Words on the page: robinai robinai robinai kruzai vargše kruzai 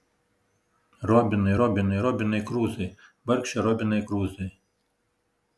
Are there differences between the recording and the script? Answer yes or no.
yes